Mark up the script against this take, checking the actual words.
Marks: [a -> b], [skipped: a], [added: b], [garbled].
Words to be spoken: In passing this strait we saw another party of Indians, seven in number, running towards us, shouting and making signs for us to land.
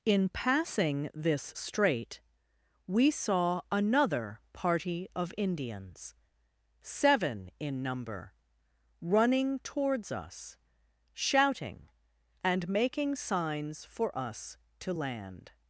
In passing this strait we saw another party of Indians, seven in number, running towards us, shouting and making signs for us to land.